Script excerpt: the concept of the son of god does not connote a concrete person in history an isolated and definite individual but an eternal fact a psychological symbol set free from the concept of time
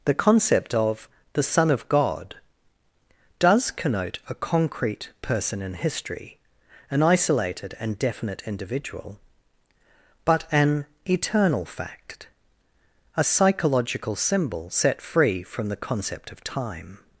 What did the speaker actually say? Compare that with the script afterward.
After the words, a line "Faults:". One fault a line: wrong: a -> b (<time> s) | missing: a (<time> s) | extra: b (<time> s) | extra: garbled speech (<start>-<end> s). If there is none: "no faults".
the concept of the son of god does connote a concrete person in history an isolated and definite individual but an eternal fact a psychological symbol set free from the concept of time
Faults:
missing: not (3.7 s)